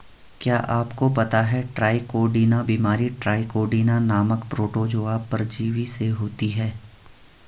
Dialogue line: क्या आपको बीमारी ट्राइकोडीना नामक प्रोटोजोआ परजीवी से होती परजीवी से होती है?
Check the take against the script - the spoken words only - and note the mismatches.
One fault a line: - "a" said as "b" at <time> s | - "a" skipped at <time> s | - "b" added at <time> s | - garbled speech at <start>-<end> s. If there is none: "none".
- "पता है ट्राइकोडीना" added at 1.1 s
- "परजीवी से होती" skipped at 6.5 s